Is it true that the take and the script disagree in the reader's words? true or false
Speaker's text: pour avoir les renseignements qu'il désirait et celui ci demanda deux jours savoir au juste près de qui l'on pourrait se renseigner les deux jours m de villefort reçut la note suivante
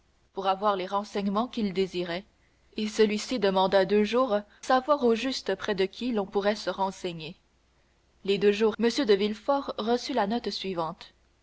false